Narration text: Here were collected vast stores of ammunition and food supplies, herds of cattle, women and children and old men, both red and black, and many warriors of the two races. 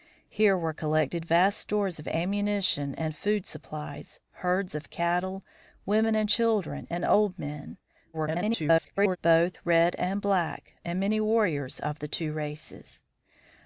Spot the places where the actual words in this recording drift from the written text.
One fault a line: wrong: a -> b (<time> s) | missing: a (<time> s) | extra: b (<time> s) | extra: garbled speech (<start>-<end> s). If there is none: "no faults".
extra: garbled speech (8.1-9.2 s)